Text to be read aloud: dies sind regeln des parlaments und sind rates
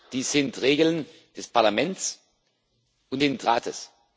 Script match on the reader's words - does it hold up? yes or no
yes